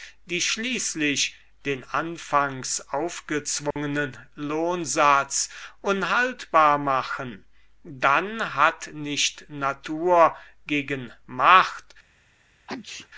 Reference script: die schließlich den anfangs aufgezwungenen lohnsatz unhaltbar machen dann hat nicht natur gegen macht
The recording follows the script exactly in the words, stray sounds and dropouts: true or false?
false